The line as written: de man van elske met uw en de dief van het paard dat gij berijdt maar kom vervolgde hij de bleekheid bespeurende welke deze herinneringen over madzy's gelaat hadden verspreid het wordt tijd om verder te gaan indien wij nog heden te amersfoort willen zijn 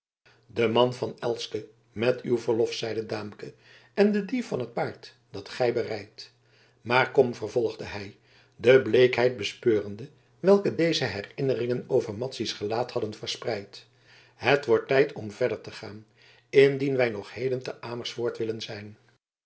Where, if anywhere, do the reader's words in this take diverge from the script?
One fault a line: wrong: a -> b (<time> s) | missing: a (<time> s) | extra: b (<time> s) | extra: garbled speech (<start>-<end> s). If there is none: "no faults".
extra: verlof zeide daamke (2.4 s)